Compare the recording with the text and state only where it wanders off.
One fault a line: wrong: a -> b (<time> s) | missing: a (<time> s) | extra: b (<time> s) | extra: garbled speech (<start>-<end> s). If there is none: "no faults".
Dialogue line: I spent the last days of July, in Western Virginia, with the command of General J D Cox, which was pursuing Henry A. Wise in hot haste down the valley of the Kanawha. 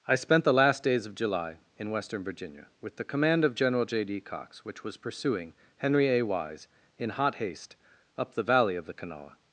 wrong: down -> up (8.2 s)